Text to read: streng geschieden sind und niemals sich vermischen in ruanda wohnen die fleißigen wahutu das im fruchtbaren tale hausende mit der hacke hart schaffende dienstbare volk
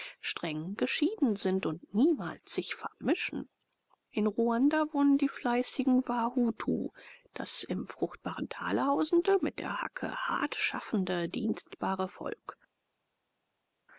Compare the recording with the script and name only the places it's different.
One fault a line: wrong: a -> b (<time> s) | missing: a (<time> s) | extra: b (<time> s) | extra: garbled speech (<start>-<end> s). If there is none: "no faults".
no faults